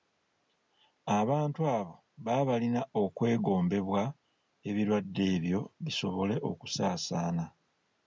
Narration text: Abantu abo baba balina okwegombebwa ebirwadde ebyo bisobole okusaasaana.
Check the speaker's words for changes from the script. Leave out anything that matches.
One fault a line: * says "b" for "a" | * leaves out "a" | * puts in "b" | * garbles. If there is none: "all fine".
all fine